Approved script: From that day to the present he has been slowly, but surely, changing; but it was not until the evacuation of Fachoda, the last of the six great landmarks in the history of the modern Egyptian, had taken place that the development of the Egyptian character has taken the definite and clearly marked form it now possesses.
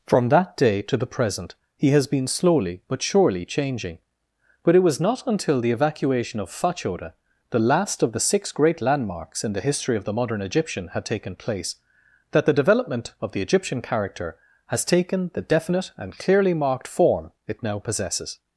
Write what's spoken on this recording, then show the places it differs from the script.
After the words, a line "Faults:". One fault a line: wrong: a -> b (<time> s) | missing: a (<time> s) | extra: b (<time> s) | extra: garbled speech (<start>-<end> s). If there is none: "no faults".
From that day to the present he has been slowly, but surely, changing; but it was not until the evacuation of Fachoda, the last of the six great landmarks in the history of the modern Egyptian, had taken place that the development of the Egyptian character has taken the definite and clearly marked form it now possesses.
Faults:
no faults